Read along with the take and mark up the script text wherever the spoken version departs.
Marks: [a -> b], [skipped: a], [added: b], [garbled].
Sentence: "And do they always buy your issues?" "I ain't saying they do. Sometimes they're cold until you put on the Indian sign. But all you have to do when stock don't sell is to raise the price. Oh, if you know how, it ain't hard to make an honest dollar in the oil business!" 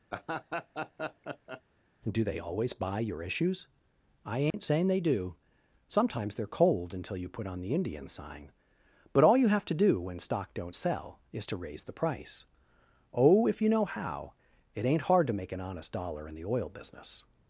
[skipped: "And] do they always buy your issues?" "I ain't saying they do. Sometimes they're cold until you put on the Indian sign. But all you have to do when stock don't sell is to raise the price. Oh, if you know how, it ain't hard to make an honest dollar in the oil business!"